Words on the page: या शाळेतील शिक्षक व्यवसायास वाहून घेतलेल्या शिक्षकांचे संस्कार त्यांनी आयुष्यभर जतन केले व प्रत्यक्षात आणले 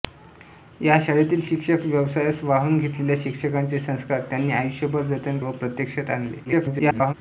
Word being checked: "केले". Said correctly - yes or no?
no